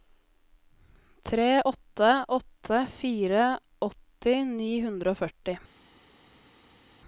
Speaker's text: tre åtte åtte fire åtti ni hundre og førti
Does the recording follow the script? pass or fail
pass